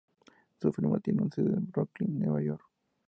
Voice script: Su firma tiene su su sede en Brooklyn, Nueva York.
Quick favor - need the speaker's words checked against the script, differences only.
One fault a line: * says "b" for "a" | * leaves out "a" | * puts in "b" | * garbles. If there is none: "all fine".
* leaves out "su"